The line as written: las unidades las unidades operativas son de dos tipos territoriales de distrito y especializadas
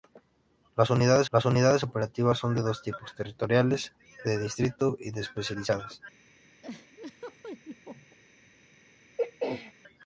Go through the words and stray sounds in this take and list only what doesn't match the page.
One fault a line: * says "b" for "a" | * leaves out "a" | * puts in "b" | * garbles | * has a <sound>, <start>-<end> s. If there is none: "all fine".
* has a laugh, 6.6-8.2 s
* has a throat clearing, 9.2-9.7 s